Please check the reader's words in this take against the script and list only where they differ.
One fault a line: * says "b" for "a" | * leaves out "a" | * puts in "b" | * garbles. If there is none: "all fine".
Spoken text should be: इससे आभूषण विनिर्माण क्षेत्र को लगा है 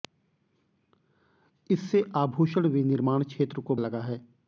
all fine